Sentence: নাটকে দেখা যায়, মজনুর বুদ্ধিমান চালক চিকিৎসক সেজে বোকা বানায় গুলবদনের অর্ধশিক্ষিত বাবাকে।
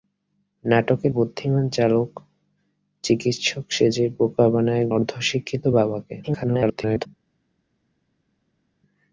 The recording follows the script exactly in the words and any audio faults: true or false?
false